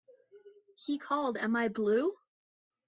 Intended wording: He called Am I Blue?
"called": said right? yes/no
yes